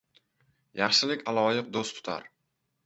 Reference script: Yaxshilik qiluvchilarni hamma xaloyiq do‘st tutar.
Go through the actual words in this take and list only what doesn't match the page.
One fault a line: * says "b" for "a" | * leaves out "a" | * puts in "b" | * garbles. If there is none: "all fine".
* leaves out "qiluvchilarni hamma"